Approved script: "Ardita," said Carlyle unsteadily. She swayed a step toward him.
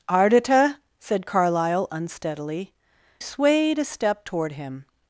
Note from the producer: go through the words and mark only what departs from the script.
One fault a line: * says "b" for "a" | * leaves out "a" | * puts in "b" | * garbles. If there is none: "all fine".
* leaves out "She"